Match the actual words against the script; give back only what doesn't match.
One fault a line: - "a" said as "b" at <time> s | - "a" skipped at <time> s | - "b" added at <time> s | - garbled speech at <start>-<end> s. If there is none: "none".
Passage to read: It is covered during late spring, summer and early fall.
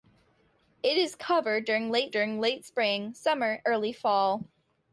- "during late" added at 2.1 s
- "and" skipped at 3.6 s